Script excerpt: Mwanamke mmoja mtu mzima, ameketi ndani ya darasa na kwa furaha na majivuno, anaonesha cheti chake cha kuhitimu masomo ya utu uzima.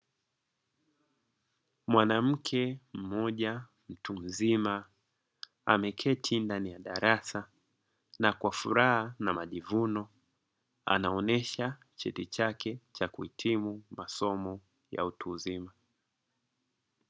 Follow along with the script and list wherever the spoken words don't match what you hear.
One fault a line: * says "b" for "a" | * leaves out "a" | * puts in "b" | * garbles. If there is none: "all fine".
all fine